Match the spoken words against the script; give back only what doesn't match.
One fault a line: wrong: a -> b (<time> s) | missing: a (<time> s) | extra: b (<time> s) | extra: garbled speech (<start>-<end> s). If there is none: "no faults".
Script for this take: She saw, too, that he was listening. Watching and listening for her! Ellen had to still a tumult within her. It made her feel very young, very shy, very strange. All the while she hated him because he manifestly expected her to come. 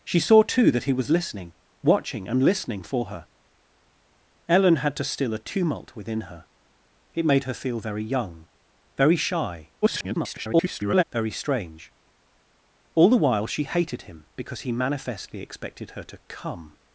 extra: garbled speech (9.8-11.0 s)